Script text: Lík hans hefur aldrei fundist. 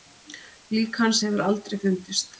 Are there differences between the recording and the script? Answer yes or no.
no